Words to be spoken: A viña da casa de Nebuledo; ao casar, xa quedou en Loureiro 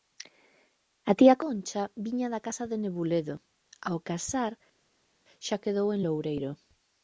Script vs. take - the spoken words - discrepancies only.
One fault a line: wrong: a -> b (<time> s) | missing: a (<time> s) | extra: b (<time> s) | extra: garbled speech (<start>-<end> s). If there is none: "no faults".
extra: tía Concha (1.2 s)